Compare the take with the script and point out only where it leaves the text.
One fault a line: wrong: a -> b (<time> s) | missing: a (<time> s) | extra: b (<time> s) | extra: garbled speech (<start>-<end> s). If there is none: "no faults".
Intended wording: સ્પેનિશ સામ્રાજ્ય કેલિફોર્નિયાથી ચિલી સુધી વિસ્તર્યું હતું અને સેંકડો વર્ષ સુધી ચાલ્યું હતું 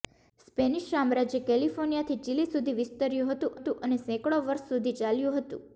extra: હતું (3.6 s)